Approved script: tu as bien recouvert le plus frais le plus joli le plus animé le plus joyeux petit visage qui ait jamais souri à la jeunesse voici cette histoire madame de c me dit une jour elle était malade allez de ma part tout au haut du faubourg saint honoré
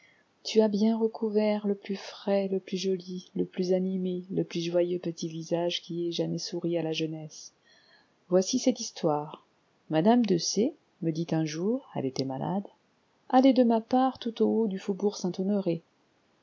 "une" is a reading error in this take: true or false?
true